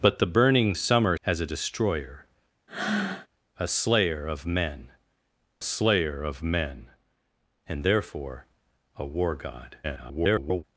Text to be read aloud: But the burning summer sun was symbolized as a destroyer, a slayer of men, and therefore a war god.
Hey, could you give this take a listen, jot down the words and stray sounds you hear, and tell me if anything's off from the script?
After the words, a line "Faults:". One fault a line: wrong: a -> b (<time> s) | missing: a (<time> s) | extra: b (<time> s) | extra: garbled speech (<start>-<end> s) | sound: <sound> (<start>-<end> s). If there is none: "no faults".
But the burning summer as a destroyer, a slayer of men slayer of men, and therefore a war god. [garbled]
Faults:
missing: sun was symbolized (1.1 s)
sound: breath (2.7-3.3 s)
extra: slayer of men (5.6 s)
extra: garbled speech (9.8-10.6 s)